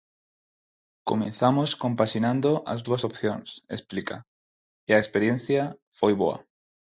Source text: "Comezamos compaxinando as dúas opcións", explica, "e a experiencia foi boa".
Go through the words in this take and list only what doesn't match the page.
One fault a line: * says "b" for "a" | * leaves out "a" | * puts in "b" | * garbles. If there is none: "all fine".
all fine